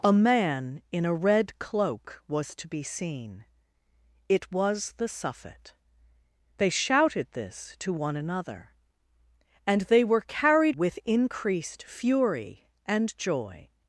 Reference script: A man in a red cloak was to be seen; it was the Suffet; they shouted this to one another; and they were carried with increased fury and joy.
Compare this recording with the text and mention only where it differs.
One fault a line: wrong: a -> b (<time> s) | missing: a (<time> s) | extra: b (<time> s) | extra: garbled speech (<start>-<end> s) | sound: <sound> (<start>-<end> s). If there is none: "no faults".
no faults